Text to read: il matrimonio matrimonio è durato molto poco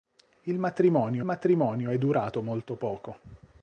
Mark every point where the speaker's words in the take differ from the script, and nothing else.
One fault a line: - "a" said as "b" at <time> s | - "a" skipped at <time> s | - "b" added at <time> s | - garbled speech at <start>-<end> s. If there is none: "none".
none